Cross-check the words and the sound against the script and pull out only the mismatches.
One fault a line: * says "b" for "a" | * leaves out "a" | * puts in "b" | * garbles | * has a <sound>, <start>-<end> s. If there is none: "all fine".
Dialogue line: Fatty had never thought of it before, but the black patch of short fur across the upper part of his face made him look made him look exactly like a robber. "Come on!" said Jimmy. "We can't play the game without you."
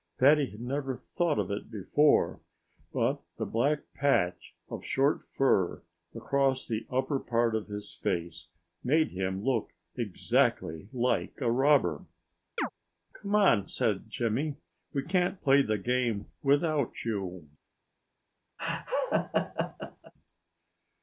* leaves out "made him look"
* has a chirp, 12.6-12.7 s
* has a laugh, 18.6-20.1 s